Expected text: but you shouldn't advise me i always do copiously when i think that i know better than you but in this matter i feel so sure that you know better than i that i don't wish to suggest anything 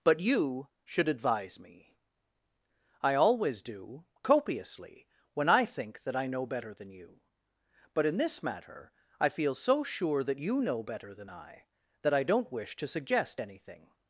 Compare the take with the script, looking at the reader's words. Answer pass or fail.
fail